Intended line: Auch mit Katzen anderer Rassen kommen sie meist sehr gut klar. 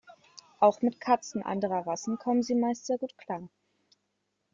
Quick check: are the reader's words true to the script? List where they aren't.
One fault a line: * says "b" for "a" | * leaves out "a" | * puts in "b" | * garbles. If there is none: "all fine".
all fine